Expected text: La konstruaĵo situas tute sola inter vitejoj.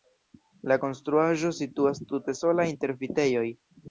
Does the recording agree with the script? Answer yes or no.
yes